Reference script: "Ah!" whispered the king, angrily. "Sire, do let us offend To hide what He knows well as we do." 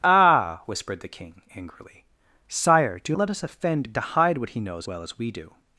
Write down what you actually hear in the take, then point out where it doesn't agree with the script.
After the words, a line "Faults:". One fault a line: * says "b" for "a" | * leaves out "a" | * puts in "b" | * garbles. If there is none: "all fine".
"Ah!" whispered the king, angrily. "Sire, do let us offend To hide what He knows well as we do."
Faults:
all fine